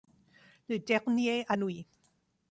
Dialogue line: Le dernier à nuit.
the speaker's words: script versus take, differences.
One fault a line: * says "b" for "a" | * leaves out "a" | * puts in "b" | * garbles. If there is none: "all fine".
all fine